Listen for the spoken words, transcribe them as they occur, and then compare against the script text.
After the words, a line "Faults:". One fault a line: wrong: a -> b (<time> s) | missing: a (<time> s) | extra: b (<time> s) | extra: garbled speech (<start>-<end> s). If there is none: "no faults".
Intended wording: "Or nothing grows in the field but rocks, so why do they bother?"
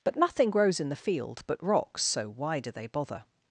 "But nothing grows in the field but rocks, so why do they bother?"
Faults:
wrong: Or -> But (0.0 s)